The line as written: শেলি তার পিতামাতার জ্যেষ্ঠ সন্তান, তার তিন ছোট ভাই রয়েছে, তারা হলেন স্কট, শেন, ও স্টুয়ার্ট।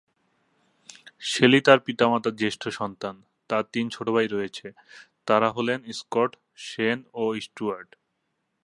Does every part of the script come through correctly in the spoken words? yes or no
yes